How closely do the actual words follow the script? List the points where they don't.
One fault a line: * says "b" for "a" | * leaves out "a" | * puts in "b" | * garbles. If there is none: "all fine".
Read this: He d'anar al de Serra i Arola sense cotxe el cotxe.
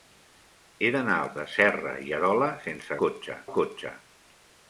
all fine